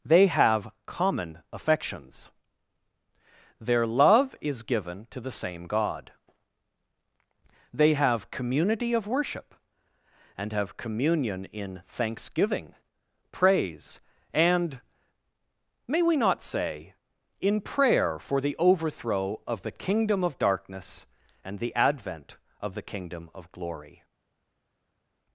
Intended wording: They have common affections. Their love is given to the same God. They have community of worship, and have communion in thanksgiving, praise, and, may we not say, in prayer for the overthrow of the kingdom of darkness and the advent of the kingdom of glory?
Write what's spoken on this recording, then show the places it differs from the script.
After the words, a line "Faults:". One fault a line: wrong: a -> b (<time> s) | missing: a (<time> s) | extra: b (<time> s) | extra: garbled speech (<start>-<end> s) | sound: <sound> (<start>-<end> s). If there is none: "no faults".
They have common affections. Their love is given to the same God. They have community of worship, and have communion in thanksgiving, praise, and, may we not say, in prayer for the overthrow of the kingdom of darkness and the advent of the kingdom of glory?
Faults:
no faults